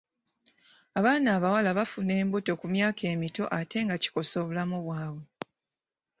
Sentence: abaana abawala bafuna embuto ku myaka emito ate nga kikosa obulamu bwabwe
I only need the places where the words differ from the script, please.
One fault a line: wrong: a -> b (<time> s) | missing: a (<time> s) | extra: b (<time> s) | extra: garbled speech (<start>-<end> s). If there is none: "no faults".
no faults